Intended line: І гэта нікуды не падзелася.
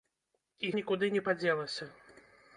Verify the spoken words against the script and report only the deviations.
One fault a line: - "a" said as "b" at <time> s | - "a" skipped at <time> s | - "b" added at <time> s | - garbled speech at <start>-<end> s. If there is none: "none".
- "гэта" skipped at 0.7 s